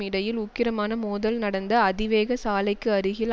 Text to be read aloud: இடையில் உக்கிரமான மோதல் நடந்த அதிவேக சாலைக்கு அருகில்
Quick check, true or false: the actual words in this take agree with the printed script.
true